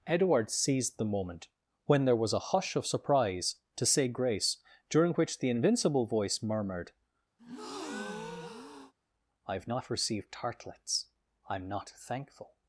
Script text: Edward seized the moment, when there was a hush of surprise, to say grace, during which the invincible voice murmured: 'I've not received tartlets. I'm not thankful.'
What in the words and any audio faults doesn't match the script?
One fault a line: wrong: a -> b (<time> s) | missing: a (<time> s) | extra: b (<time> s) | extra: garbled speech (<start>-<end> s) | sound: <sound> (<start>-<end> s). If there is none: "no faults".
sound: breath (7.4-8.9 s)